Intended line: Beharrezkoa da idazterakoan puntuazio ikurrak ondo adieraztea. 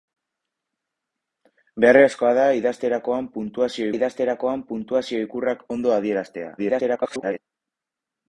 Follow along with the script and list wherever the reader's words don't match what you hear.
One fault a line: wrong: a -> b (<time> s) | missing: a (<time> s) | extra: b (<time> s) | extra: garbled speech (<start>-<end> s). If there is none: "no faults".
extra: idazterakoan puntuazio (4.0 s)
extra: garbled speech (6.6-7.4 s)